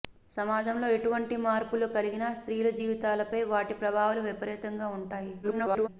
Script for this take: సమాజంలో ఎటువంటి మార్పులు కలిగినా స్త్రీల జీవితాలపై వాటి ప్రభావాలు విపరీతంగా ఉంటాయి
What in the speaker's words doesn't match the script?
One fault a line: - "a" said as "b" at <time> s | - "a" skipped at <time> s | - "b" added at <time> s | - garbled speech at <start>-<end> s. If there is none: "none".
- garbled speech at 5.4-5.9 s